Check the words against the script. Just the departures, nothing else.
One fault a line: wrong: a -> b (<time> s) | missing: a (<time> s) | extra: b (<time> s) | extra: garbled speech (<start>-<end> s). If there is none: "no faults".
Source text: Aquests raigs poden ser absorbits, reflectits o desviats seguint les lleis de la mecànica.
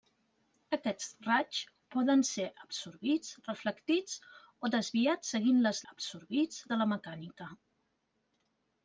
wrong: lleis -> absorbits (5.9 s)